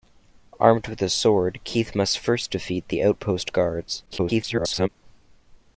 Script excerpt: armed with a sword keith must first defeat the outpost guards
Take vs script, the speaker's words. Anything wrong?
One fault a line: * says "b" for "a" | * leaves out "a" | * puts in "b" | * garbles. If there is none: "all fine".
* garbles